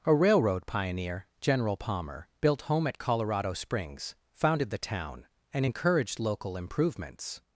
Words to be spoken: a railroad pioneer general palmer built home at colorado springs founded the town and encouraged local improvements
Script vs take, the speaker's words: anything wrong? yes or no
no